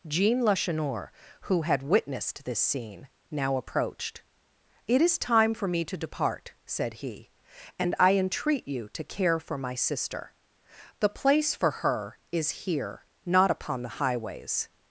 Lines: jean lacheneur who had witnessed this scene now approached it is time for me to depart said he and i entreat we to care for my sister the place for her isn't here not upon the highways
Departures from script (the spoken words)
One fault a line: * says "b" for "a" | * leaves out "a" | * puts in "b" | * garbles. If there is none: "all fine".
* says "you" for "we"
* says "is" for "isn't"